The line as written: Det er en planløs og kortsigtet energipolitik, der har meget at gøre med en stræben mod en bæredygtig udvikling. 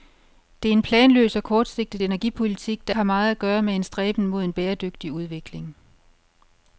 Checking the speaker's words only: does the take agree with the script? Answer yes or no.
yes